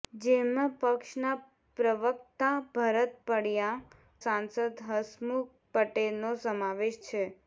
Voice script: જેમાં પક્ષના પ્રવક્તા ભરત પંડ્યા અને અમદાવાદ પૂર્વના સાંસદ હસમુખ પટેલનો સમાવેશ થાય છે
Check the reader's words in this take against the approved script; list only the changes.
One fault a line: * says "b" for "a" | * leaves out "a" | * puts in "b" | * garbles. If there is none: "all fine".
* leaves out "અને અમદાવાદ પૂર્વના"
* leaves out "થાય"